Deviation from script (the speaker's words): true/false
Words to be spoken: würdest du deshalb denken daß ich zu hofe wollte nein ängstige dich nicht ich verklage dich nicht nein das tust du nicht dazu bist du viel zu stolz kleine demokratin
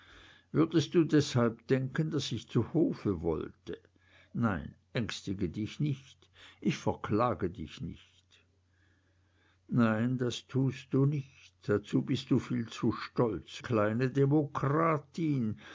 false